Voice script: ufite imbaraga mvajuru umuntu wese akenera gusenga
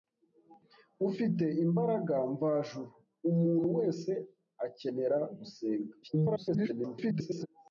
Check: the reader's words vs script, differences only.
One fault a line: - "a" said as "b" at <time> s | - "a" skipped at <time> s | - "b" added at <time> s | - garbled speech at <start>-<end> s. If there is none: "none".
- garbled speech at 6.0-7.5 s